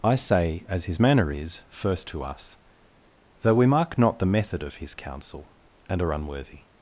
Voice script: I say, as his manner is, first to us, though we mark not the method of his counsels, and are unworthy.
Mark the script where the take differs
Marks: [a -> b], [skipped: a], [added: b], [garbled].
I say, as his manner is, first to us, though we mark not the method of his [counsels, -> counsel] and are unworthy.